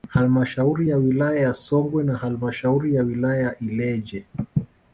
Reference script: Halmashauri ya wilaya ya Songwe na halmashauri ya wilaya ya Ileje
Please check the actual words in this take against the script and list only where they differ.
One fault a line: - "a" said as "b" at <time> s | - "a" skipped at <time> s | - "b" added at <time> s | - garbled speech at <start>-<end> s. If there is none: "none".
none